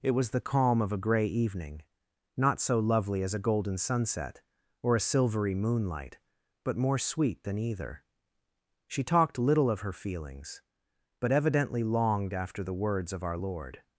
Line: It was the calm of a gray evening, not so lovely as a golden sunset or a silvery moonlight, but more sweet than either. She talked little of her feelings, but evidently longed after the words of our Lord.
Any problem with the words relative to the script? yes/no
no